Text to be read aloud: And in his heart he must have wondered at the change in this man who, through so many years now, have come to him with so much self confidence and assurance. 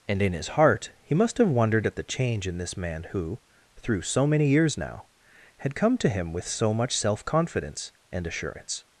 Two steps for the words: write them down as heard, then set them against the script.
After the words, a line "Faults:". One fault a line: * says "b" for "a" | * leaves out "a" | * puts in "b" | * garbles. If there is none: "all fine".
And in his heart he must have wondered at the change in this man who, through so many years now, had come to him with so much self confidence and assurance.
Faults:
* says "had" for "have"